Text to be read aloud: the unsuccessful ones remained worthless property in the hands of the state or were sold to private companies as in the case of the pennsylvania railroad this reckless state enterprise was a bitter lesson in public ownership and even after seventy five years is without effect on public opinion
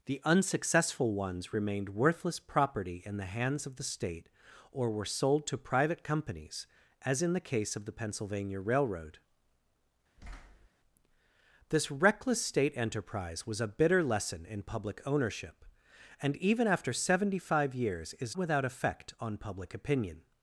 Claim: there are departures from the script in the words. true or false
false